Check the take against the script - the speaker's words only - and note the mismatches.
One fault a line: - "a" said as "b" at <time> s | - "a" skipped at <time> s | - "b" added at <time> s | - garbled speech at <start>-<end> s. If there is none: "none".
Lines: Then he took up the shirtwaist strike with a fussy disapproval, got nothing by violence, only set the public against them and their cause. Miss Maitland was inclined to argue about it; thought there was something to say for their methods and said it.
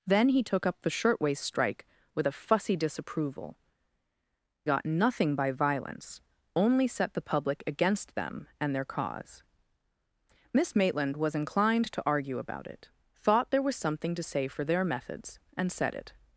none